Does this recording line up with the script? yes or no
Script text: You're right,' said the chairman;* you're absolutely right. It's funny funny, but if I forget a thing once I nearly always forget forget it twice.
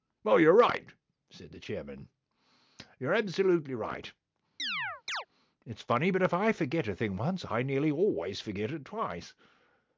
no